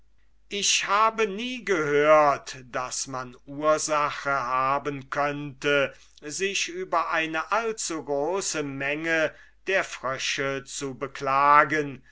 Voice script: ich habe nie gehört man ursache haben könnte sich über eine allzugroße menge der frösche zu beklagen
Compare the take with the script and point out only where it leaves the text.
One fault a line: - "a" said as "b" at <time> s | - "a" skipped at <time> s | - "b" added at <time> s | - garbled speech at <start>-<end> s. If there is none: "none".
- "daß" added at 2.7 s